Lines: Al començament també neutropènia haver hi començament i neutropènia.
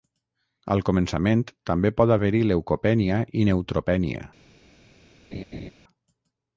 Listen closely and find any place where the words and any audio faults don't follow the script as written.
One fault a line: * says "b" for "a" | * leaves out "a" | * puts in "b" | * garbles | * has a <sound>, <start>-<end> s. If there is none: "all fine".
* says "pot" for "neutropènia"
* says "leucopènia" for "començament"
* has a laugh, 5.3-5.7 s